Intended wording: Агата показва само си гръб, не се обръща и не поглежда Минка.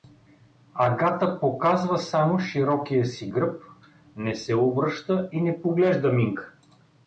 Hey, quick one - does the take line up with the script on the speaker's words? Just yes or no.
no